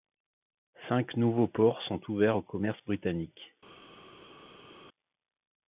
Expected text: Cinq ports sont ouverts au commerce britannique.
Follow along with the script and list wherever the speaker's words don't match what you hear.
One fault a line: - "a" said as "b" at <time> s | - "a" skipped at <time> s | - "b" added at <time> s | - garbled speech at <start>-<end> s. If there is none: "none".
- "nouveaux" added at 1.1 s